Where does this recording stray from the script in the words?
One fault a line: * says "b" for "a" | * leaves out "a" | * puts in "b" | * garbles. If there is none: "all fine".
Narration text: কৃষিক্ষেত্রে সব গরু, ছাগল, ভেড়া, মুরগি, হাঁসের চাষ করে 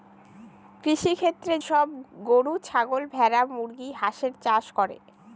all fine